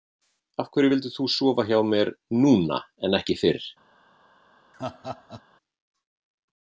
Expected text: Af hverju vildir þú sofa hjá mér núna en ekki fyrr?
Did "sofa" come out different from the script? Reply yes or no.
no